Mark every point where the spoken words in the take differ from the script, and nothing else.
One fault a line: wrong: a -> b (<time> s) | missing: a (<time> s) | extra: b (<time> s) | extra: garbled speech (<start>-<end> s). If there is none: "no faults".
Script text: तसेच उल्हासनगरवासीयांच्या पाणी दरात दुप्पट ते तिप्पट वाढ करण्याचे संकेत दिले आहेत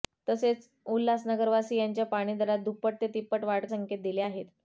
missing: करण्याचे (3.6 s)